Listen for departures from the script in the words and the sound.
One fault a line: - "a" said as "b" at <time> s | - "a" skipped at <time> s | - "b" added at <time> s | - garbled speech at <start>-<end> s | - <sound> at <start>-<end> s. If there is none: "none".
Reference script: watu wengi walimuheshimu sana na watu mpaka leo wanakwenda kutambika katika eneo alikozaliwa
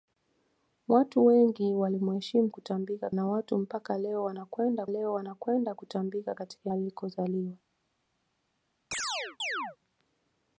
- "sana" said as "kutambika" at 2.5 s
- "leo wanakwenda" added at 4.9 s
- "eneo" skipped at 6.7 s
- chirp at 8.9-9.8 s